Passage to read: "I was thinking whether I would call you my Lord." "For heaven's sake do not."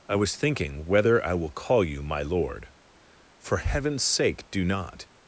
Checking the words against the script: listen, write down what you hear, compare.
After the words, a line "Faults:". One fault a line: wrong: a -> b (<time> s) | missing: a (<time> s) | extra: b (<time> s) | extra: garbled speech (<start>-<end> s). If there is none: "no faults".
"I was thinking whether I will call you my Lord." "For heaven's sake do not."
Faults:
wrong: would -> will (1.4 s)